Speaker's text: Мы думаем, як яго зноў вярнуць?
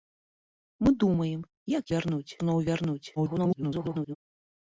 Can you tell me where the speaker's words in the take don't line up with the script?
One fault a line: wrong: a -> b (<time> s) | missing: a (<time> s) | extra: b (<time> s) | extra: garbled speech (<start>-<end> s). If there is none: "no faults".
wrong: яго -> вярнуць (2.0 s)
extra: garbled speech (3.2-4.2 s)